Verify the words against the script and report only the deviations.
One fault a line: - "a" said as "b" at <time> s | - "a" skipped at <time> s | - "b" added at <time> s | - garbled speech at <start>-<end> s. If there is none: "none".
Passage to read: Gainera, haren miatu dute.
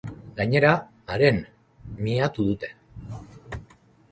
none